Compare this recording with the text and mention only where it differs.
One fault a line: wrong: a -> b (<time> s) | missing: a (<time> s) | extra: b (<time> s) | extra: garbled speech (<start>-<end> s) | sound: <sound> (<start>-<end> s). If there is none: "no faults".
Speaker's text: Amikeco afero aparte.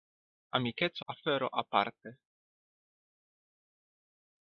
no faults